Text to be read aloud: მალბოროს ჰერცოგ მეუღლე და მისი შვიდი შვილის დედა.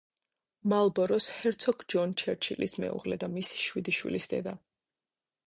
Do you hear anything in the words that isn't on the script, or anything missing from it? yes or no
yes